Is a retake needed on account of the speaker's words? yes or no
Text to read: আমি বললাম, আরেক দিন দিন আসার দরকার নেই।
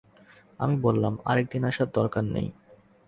yes